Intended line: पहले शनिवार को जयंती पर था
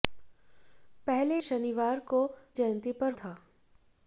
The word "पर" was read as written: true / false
true